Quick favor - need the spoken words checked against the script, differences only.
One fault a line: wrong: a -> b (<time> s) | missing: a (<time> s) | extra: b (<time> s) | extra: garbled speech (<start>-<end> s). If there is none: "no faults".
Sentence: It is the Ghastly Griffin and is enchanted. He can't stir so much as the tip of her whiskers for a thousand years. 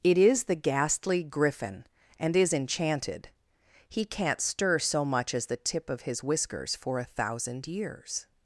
wrong: her -> his (6.0 s)